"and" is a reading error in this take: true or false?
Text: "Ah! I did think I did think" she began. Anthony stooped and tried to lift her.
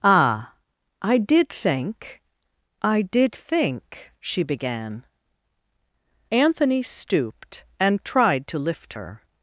false